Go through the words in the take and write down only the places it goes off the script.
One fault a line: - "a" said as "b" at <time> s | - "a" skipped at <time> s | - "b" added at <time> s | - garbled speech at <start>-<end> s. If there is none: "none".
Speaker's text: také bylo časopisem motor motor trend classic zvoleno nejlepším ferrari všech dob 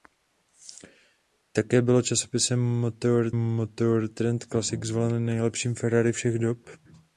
none